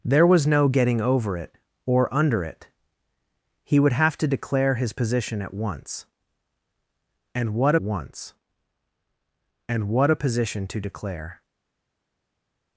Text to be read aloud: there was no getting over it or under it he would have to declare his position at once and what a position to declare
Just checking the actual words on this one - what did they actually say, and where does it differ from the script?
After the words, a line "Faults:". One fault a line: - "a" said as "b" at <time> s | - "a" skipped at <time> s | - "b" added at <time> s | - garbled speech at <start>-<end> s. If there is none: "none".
there was no getting over it or under it he would have to declare his position at once and what once and what a position to declare
Faults:
- "once and what" added at 7.8 s